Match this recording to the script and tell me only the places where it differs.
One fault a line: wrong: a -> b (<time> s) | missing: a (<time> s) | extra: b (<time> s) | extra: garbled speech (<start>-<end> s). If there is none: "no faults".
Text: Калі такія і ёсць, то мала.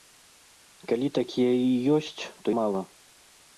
no faults